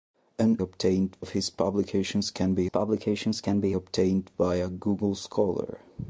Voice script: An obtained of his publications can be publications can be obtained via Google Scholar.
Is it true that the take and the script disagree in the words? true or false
false